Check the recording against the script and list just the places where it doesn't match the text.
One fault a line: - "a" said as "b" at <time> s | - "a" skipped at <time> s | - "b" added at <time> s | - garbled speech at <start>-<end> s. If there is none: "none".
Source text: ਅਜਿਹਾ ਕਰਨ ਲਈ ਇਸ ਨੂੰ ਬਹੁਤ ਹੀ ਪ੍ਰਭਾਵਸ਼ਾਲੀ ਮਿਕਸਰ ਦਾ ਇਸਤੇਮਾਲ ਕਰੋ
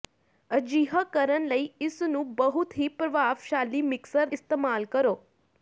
- "ਦਾ" skipped at 4.3 s